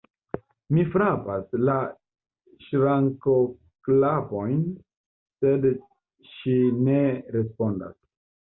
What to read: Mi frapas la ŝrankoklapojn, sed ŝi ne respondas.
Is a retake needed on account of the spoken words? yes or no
no